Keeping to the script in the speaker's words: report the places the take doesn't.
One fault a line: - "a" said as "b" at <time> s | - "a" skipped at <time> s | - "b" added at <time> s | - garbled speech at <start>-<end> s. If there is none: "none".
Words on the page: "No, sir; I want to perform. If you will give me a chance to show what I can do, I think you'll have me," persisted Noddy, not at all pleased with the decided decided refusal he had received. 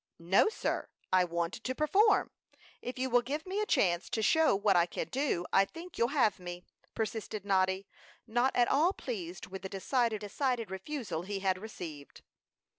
none